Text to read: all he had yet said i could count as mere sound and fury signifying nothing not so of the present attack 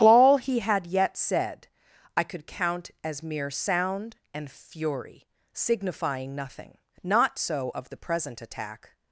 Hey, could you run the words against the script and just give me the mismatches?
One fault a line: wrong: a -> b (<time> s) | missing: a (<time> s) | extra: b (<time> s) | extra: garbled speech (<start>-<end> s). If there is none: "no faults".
no faults